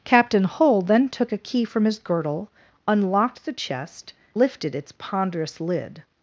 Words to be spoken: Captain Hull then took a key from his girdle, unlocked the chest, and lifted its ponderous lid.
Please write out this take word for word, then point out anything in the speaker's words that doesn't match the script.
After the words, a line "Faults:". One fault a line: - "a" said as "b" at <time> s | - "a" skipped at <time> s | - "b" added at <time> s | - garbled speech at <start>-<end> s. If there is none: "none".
Captain Hull then took a key from his girdle, unlocked the chest, lifted its ponderous lid.
Faults:
- "and" skipped at 4.1 s